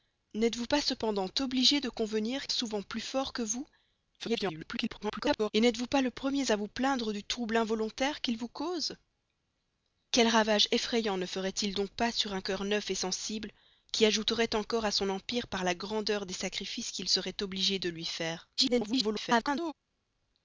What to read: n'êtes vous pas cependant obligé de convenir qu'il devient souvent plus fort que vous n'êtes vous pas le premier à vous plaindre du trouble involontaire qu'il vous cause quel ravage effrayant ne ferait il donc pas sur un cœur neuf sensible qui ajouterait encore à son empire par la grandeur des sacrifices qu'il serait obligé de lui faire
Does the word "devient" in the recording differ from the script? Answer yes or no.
yes